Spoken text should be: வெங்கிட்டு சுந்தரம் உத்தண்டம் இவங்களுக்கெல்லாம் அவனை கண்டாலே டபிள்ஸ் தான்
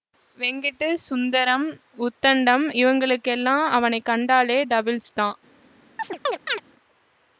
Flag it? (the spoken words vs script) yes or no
no